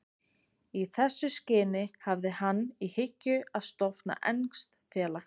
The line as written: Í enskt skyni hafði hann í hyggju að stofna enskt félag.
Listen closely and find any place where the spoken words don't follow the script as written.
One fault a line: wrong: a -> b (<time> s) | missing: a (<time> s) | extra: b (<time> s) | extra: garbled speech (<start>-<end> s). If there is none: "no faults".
wrong: enskt -> þessu (1.0 s)